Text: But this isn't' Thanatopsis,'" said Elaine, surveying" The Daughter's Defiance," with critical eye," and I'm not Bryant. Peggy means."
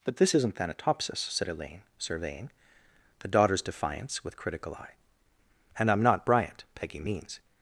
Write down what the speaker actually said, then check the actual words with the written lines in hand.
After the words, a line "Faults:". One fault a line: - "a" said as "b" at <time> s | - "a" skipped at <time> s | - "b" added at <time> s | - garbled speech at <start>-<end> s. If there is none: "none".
But this isn't' Thanatopsis,'" said Elaine, surveying" The Daughter's Defiance," with critical eye," and I'm not Bryant. Peggy means."
Faults:
none